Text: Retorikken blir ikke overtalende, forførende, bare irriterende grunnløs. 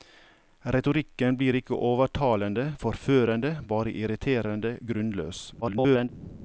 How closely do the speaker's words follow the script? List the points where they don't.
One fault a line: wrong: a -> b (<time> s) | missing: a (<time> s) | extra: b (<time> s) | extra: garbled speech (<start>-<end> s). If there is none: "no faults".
extra: garbled speech (5.6-6.1 s)